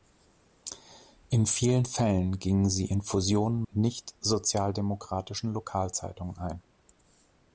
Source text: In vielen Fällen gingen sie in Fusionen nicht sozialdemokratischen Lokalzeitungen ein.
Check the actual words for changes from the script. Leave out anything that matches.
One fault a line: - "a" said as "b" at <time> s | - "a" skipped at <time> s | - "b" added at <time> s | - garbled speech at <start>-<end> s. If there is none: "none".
none